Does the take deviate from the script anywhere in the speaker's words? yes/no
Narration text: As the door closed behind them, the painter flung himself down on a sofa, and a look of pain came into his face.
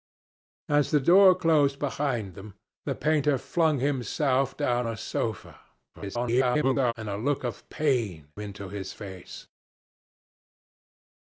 yes